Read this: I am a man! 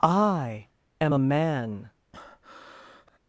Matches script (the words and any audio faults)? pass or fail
fail